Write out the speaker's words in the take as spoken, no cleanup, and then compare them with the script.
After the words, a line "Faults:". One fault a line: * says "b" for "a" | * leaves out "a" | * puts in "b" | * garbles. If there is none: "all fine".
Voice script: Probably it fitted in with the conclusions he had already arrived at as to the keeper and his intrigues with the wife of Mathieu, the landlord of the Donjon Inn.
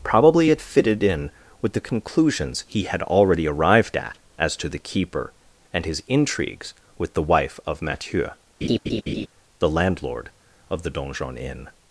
Probably it fitted in with the conclusions he had already arrived at as to the keeper and his intrigues with the wife of Mathieu, the landlord of the Donjon Inn.
Faults:
all fine